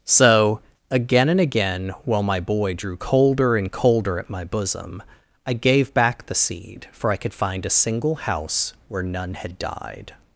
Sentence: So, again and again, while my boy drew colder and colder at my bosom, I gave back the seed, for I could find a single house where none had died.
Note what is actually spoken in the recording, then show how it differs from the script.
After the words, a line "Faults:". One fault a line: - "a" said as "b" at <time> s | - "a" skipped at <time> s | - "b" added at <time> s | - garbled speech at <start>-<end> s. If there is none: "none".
So, again and again, while my boy drew colder and colder at my bosom, I gave back the seed, for I could find a single house where none had died.
Faults:
none